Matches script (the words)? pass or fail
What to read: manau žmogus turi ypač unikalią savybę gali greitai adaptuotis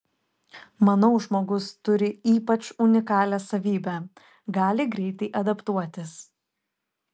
pass